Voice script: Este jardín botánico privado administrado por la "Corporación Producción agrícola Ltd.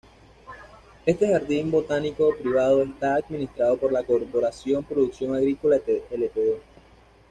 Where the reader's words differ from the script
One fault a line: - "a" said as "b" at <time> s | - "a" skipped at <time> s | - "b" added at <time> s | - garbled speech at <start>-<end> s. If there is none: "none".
- "está" added at 2.8 s